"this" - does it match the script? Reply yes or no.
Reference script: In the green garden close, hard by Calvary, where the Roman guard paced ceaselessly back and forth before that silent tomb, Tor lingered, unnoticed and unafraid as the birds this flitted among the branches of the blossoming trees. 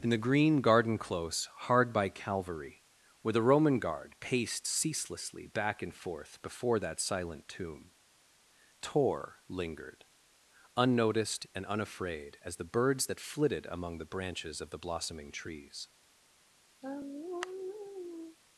no